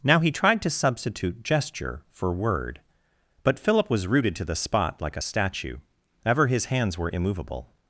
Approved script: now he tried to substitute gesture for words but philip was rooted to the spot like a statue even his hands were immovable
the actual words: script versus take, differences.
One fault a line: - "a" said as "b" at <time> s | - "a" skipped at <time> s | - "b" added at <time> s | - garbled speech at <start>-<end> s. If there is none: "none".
- "words" said as "word" at 2.3 s
- "even" said as "ever" at 6.2 s